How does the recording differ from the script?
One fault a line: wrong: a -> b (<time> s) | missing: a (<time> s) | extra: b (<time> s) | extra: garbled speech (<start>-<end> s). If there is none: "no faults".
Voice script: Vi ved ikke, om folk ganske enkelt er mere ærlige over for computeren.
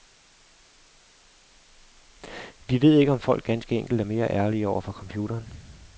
no faults